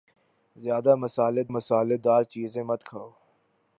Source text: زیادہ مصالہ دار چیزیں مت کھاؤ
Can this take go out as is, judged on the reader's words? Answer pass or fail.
fail